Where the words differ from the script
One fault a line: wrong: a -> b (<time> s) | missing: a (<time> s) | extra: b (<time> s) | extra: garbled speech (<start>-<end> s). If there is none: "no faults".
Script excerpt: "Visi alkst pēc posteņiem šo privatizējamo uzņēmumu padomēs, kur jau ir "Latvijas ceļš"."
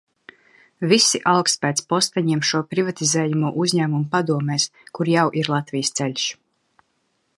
no faults